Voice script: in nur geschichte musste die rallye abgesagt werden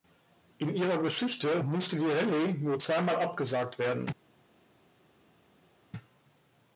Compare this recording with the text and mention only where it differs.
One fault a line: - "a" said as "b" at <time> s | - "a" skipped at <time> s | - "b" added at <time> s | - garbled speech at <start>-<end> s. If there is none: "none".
- "nur" said as "ihrer" at 0.8 s
- "nur zweimal" added at 2.5 s